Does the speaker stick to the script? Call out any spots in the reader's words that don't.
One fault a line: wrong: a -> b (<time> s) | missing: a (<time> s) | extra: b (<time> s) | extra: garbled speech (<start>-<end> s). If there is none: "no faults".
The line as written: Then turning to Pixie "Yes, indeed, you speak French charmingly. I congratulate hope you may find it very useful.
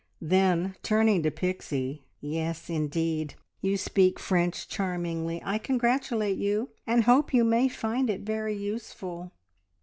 extra: you and (6.4 s)